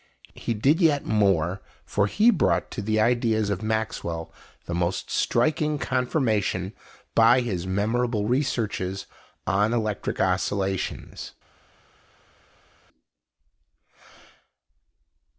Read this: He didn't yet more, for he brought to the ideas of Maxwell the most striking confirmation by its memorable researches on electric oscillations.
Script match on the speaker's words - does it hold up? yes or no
no